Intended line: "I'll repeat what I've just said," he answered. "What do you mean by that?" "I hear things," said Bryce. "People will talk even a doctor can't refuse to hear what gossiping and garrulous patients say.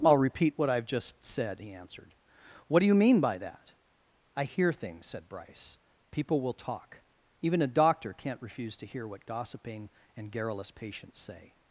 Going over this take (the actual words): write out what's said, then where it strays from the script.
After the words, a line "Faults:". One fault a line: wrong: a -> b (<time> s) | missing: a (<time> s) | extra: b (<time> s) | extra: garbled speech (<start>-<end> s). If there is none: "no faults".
"I'll repeat what I've just said," he answered. "What do you mean by that?" "I hear things," said Bryce. "People will talk even a doctor can't refuse to hear what gossiping and garrulous patients say.
Faults:
no faults